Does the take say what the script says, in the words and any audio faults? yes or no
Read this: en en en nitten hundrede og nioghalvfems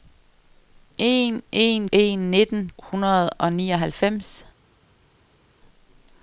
yes